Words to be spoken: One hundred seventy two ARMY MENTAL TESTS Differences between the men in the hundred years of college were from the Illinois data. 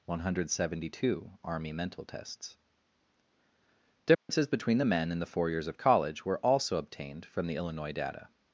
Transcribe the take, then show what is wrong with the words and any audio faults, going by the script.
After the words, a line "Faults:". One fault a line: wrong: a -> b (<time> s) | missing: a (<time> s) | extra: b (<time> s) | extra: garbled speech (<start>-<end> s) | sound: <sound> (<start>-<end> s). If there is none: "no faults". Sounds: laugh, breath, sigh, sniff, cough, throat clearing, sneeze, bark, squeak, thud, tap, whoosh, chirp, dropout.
One hundred seventy two ARMY MENTAL TESTS Differences between the men in the four years of college were also obtained from the Illinois data.
Faults:
sound: dropout (4.1-4.3 s)
wrong: hundred -> four (5.3 s)
extra: also obtained (6.4 s)